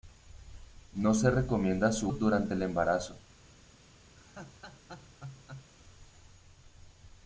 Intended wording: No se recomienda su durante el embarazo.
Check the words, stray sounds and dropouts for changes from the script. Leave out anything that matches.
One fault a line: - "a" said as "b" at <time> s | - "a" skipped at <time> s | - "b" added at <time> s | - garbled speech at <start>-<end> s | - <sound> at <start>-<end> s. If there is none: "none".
- laugh at 4.2-5.7 s